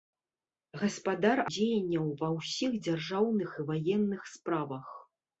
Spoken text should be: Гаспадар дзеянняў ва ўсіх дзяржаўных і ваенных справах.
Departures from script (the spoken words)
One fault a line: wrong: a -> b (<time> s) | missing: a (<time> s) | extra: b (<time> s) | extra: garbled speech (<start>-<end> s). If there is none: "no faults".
no faults